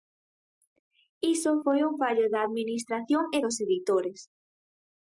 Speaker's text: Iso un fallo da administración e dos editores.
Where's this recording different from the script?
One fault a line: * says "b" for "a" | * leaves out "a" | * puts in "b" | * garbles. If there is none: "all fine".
* puts in "foi"